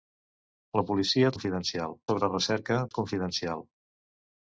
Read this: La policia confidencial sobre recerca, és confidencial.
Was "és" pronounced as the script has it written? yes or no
yes